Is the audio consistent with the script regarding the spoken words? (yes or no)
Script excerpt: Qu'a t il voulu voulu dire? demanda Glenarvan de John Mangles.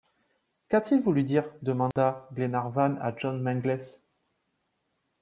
no